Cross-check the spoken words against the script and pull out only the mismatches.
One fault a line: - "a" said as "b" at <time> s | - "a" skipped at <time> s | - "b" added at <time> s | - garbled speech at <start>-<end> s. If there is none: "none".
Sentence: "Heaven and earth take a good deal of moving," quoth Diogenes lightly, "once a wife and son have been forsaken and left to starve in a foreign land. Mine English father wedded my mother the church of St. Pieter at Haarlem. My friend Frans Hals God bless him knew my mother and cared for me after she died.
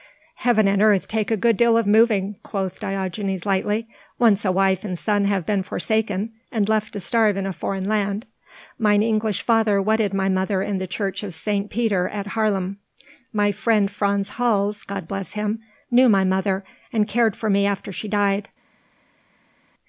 - "in" added at 10.6 s